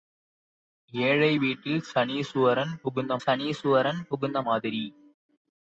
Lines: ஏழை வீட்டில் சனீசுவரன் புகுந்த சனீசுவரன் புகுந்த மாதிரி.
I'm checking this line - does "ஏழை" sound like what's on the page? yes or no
yes